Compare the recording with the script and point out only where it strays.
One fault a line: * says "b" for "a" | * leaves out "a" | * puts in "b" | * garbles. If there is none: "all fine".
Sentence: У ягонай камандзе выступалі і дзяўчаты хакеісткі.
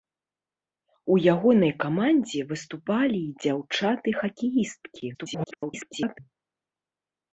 * garbles